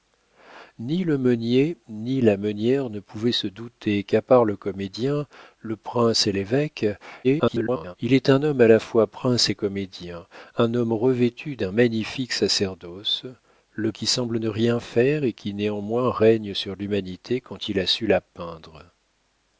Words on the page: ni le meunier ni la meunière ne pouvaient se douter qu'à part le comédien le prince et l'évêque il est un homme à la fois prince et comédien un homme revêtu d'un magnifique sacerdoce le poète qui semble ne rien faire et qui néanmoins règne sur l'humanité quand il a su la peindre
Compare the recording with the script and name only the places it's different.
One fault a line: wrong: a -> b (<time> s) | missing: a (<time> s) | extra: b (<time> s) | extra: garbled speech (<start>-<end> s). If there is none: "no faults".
extra: garbled speech (7.2-8.0 s)
missing: poète (13.9 s)